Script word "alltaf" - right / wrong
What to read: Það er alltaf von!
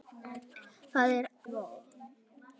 wrong